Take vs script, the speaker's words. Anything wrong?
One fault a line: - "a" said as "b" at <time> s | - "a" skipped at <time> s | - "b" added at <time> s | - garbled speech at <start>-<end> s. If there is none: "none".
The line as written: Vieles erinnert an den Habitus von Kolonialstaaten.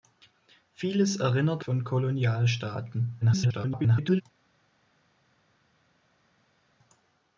- "an den Habitus" skipped at 1.6 s
- garbled speech at 3.2-4.2 s